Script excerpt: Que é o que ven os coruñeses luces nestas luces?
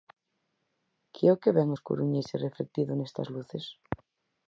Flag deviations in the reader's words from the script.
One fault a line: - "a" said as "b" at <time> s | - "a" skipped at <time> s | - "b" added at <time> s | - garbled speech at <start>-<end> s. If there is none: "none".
- "luces" said as "reflectido" at 2.5 s